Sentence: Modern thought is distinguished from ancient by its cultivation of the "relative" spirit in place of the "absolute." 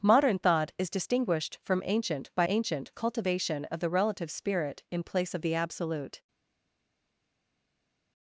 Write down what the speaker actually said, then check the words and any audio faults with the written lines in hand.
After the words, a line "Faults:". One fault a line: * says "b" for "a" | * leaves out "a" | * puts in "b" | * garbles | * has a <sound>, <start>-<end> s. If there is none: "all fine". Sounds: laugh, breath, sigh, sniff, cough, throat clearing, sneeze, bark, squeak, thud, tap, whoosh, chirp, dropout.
Modern thought is distinguished from ancient by ancient cultivation of the "relative" spirit in place of the "absolute."
Faults:
* says "ancient" for "its"